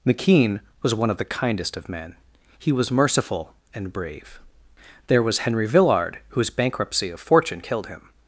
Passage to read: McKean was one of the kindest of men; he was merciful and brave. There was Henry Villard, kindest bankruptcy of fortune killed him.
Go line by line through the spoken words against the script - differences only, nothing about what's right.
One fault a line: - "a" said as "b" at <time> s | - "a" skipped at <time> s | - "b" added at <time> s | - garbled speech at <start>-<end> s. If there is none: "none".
- "kindest" said as "whose" at 6.3 s